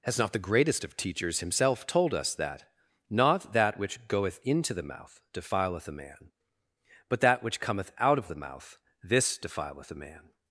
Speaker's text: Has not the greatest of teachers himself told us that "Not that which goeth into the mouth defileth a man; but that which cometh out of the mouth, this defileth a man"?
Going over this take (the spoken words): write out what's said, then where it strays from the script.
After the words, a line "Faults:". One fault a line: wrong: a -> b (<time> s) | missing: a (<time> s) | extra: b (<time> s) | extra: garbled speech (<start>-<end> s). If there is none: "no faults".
Has not the greatest of teachers himself told us that "Not that which goeth into the mouth defileth a man; but that which cometh out of the mouth, this defileth a man"?
Faults:
no faults